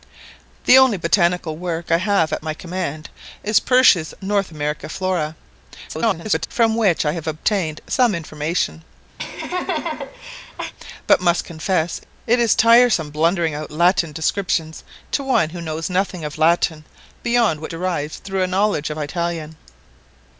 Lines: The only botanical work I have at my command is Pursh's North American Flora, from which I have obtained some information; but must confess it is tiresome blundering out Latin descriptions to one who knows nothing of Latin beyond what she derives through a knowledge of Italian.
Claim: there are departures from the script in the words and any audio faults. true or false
true